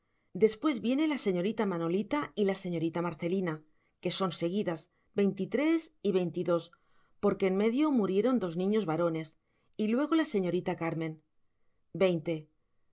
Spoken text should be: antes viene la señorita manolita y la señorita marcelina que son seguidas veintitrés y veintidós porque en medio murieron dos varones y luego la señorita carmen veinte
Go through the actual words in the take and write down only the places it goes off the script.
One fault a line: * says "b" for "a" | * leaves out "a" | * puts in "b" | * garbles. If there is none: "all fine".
* says "después" for "antes"
* puts in "niños"